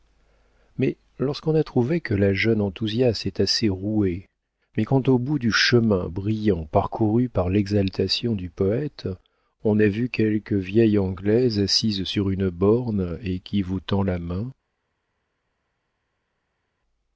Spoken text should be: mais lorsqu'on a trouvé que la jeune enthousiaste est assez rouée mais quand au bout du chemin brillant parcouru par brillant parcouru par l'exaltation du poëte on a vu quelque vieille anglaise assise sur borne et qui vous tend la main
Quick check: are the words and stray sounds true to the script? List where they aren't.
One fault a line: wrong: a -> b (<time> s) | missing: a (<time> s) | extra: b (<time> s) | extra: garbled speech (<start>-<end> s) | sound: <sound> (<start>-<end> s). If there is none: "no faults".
missing: brillant parcouru par (7.5 s)
extra: une (12.3 s)